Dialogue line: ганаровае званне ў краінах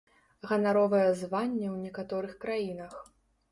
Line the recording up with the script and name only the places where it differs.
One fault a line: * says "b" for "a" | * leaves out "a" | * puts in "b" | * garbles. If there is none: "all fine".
* puts in "некаторых"